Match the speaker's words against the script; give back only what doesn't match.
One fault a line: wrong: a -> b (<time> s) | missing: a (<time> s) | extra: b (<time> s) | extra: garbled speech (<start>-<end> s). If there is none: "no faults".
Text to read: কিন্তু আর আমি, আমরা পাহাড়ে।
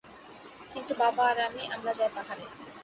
extra: বাবা (1.0 s)
extra: যাই (1.9 s)